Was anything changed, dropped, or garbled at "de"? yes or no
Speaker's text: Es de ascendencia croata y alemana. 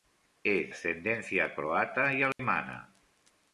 yes